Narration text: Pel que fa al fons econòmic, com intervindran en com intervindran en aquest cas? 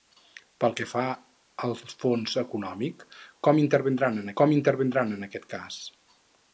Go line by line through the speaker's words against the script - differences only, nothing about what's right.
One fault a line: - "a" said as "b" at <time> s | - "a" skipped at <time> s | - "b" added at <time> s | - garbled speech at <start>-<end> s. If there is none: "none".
none